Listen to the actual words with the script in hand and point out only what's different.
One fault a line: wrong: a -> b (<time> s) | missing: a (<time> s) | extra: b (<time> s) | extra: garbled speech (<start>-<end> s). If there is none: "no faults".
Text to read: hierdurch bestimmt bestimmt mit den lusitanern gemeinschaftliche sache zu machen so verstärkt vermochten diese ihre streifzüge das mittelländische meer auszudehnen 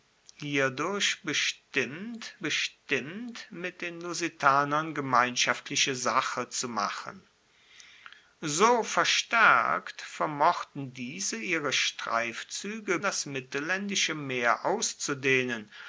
no faults